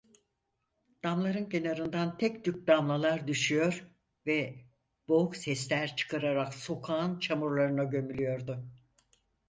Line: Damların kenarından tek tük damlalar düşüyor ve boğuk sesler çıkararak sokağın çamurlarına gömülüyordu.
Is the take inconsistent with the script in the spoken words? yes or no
no